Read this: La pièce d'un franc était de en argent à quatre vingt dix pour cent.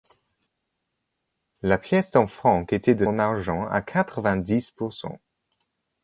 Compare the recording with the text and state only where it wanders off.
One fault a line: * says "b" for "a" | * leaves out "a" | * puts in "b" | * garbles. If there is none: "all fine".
all fine